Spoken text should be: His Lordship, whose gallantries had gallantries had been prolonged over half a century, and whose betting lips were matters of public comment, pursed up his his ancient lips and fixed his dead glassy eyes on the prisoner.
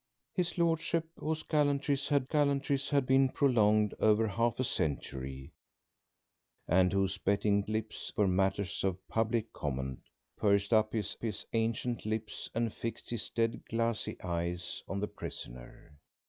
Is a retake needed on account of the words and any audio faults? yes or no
no